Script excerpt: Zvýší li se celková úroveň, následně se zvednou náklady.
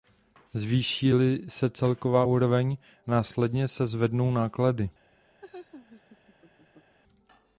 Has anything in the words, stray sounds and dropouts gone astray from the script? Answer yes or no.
yes